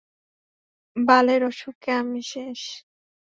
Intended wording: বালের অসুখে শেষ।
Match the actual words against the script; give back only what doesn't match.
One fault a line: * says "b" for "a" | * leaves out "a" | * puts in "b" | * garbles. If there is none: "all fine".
* puts in "আমি"